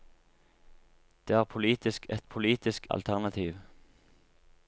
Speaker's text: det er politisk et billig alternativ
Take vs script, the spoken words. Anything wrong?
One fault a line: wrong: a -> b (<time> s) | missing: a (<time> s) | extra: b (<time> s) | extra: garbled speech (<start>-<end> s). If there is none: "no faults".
wrong: billig -> politisk (2.2 s)